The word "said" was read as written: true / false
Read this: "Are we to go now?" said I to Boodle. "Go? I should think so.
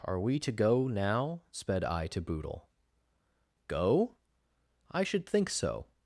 false